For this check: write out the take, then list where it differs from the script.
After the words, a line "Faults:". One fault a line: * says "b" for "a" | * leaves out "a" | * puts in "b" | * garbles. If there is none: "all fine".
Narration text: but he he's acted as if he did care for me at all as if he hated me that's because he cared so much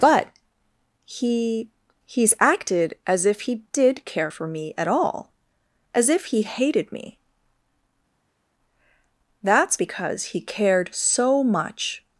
but he he's acted as if he did care for me at all as if he hated me that's because he cared so much
Faults:
all fine